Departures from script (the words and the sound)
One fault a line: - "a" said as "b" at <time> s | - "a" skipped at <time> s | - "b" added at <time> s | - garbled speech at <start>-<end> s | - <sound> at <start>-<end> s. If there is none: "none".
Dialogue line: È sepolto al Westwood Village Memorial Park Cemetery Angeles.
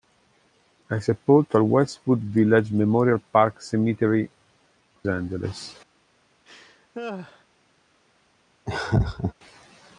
- laugh at 6.4-7.5 s
- laugh at 8.7-9.3 s